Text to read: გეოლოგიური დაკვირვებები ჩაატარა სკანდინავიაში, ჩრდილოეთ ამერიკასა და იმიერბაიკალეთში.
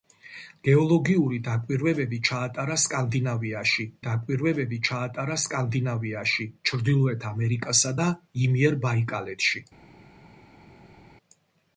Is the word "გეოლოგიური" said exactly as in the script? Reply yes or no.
yes